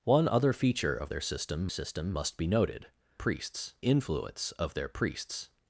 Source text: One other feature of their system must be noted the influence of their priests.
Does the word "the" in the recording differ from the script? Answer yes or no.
yes